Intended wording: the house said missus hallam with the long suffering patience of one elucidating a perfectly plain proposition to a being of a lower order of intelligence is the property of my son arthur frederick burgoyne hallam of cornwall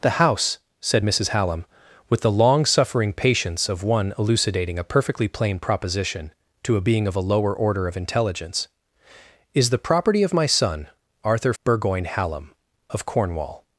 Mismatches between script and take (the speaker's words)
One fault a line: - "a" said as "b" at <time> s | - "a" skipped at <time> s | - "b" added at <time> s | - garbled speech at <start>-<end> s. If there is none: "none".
- "frederick" skipped at 11.5 s